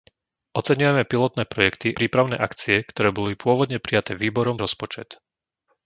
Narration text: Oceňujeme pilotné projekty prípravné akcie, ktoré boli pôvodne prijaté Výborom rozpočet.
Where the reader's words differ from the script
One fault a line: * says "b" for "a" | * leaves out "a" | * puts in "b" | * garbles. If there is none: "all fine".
all fine